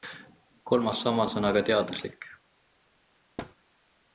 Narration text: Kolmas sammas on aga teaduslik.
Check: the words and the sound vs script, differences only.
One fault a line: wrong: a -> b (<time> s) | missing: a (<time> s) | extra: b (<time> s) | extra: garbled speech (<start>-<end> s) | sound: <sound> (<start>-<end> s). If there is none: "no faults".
sound: thud (3.4-3.6 s)